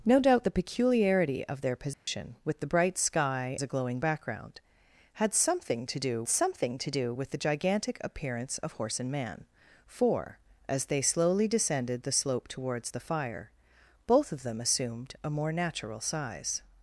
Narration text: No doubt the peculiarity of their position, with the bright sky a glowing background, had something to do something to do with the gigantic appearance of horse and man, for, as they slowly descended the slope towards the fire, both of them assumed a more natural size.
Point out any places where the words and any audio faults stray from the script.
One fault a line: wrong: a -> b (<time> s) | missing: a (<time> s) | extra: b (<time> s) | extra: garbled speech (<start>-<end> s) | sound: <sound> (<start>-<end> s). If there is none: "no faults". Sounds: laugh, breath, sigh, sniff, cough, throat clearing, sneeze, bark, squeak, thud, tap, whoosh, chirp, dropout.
sound: dropout (1.9-2.1 s)